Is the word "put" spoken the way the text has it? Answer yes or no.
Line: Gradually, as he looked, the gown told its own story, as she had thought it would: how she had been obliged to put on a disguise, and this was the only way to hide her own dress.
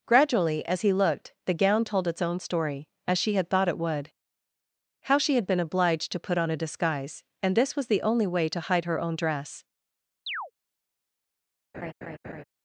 yes